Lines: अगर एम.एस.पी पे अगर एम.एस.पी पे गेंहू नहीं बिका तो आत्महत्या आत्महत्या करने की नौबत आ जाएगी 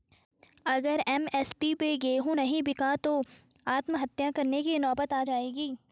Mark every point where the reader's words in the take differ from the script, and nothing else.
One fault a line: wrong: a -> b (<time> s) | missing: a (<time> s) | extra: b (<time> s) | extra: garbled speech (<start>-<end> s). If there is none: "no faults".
missing: अगर एम.एस.पी पे (1.9 s)
missing: आत्महत्या (4.3 s)